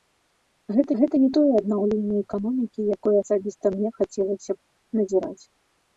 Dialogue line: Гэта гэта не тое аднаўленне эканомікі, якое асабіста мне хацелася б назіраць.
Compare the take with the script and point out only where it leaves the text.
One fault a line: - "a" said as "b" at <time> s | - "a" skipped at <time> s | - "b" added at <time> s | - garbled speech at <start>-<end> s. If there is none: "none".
none